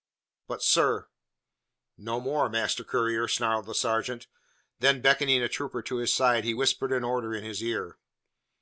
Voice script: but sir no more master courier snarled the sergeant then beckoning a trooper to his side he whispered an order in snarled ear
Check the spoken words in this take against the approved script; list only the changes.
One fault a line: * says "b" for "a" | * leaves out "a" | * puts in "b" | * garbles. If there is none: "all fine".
* says "his" for "snarled"